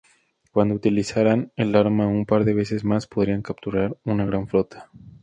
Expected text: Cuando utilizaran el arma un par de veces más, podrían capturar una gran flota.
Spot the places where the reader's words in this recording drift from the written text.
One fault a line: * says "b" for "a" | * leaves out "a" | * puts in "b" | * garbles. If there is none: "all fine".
all fine